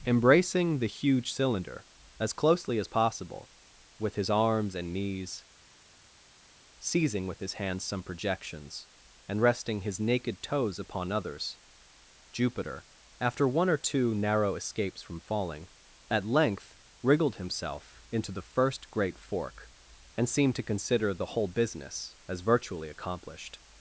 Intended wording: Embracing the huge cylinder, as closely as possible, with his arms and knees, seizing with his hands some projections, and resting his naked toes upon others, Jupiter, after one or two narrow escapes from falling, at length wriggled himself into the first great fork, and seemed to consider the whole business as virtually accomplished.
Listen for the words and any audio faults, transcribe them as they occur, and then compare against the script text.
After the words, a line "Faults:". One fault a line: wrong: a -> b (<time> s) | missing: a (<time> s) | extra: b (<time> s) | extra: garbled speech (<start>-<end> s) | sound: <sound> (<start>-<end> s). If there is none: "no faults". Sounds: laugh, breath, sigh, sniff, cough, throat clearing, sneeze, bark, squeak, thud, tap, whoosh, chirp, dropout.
Embracing the huge cylinder, as closely as possible, with his arms and knees, seizing with his hands some projections, and resting his naked toes upon others, Jupiter, after one or two narrow escapes from falling, at length wriggled himself into the first great fork, and seemed to consider the whole business as virtually accomplished.
Faults:
no faults